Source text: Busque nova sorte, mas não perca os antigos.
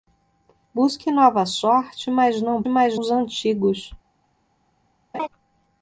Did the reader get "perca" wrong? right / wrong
wrong